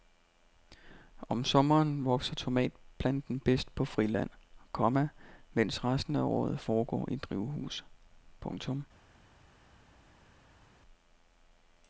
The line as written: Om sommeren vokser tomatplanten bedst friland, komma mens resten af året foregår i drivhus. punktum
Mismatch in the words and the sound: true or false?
true